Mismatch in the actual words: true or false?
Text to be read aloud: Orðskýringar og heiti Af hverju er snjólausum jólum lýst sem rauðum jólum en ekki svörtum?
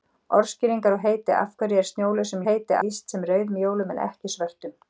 true